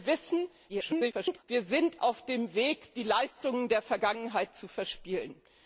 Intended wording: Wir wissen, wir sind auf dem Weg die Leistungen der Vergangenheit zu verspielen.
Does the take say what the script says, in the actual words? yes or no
no